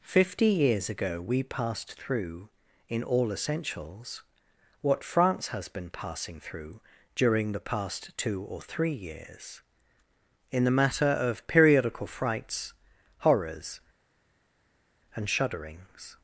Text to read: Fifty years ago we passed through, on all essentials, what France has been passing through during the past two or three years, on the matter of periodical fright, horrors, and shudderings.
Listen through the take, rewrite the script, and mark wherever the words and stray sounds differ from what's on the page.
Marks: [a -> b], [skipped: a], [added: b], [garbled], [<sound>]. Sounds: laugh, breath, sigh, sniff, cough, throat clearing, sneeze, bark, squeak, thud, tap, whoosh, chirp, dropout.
Fifty years ago we passed through, [on -> in] all essentials, what France has been passing through during the past two or three years, [on -> in] the matter of periodical [fright, -> frights] horrors, and shudderings.